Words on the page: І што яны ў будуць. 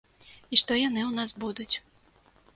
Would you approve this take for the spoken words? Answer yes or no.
no